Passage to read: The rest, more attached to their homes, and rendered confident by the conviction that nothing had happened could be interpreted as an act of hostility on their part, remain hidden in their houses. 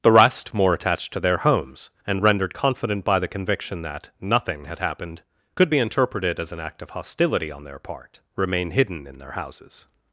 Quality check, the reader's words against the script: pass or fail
pass